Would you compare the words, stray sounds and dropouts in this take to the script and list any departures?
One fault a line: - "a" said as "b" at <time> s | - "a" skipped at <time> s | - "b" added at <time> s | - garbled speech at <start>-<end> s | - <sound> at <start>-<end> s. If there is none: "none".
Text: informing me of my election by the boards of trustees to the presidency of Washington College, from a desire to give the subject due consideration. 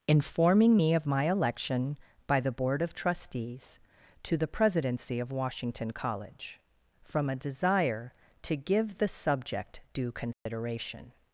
- "boards" said as "board" at 2.5 s
- dropout at 10.3-10.5 s